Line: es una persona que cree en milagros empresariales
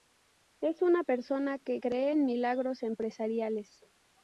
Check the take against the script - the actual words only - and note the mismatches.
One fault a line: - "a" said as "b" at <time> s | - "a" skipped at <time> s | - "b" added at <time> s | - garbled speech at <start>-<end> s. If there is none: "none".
none